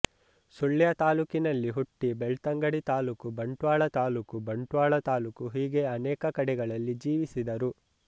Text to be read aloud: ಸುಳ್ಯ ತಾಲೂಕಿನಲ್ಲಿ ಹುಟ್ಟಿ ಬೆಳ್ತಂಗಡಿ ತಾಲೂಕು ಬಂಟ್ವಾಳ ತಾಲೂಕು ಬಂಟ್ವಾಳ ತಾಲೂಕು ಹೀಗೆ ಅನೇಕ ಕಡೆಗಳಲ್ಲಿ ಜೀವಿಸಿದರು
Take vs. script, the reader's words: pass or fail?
pass